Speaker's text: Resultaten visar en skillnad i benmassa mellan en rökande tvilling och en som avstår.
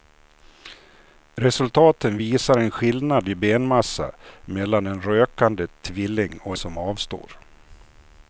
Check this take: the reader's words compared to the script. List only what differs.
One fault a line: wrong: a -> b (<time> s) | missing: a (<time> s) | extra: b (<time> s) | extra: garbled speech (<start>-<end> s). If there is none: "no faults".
missing: en (6.6 s)